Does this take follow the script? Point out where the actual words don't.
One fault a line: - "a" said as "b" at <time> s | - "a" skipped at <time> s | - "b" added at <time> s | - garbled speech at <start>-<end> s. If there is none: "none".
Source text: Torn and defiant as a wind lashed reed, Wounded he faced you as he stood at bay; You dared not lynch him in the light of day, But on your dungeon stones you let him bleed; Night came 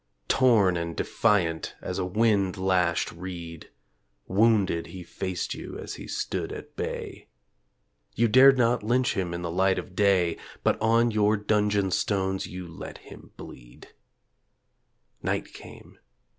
none